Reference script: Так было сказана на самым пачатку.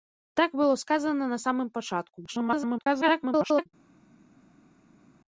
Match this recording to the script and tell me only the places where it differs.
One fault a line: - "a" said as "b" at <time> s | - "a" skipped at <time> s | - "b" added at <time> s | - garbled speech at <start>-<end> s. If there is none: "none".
- garbled speech at 2.3-3.7 s